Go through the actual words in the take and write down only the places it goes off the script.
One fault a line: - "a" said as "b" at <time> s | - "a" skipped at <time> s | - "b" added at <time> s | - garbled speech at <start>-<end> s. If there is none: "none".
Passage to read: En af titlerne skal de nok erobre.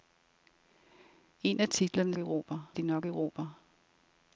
- "skal" said as "erobre" at 2.2 s